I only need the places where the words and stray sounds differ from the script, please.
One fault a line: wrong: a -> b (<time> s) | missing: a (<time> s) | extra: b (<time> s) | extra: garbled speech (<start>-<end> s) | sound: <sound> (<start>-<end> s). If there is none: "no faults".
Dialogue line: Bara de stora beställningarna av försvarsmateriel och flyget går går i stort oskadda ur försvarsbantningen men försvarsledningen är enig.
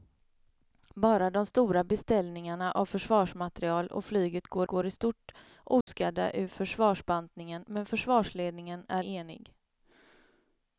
sound: dropout (5.8-5.9 s)